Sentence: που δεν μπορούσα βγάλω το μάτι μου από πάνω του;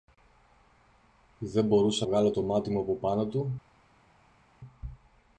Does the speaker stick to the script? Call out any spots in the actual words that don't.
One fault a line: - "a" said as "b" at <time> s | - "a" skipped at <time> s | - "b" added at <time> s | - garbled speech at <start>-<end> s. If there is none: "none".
none